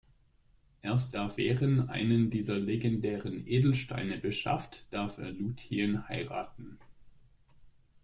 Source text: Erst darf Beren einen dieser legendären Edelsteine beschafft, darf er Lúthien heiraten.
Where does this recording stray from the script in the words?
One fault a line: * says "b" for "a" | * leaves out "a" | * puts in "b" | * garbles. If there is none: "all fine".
all fine